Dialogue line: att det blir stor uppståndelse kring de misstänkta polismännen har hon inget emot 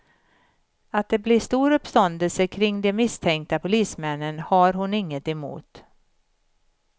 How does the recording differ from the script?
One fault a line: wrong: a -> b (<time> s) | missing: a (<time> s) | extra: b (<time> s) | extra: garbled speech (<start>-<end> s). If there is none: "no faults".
no faults